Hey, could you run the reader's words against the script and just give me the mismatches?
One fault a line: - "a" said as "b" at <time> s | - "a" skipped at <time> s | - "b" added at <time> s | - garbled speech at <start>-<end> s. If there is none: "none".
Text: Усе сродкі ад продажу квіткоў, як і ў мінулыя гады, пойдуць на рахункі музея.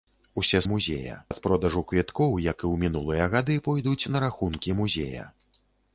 - "сродкі" said as "музея" at 0.7 s